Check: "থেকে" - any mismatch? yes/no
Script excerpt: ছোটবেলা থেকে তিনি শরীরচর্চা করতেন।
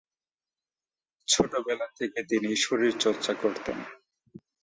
no